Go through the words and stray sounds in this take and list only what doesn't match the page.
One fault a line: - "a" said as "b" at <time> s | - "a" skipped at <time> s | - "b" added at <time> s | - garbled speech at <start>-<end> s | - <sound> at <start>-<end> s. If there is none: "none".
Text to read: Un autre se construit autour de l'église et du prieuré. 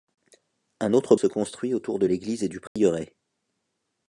- dropout at 2.7-2.8 s